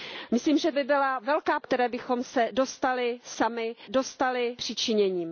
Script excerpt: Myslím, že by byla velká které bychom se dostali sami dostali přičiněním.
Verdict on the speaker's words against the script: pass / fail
pass